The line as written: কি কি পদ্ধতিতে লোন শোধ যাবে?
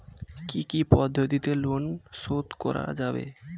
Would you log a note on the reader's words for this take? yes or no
yes